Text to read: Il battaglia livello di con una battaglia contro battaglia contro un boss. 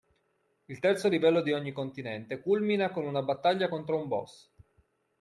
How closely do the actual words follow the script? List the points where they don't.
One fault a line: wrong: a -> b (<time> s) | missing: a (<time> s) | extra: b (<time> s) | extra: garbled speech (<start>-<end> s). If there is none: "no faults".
wrong: battaglia -> terzo (0.8 s)
extra: ogni continente culmina (1.5 s)
missing: battaglia contro (4.0 s)